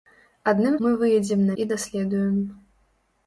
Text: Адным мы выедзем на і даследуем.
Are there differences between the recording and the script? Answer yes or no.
no